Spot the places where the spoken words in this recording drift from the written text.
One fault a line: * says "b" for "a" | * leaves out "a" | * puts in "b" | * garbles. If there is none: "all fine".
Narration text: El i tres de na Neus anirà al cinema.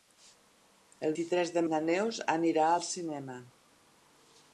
all fine